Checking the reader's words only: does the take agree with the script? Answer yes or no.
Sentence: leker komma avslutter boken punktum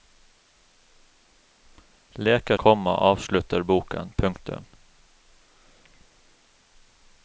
yes